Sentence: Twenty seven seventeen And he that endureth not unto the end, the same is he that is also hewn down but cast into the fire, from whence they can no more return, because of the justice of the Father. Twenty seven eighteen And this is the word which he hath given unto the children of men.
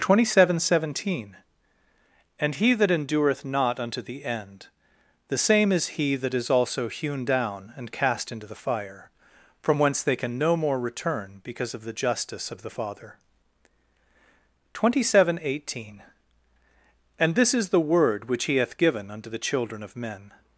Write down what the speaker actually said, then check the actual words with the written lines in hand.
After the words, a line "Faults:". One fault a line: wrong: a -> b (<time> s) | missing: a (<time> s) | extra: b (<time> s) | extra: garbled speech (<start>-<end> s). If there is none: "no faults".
Twenty seven seventeen And he that endureth not unto the end, the same is he that is also hewn down and cast into the fire, from whence they can no more return, because of the justice of the Father. Twenty seven eighteen And this is the word which he hath given unto the children of men.
Faults:
wrong: but -> and (7.8 s)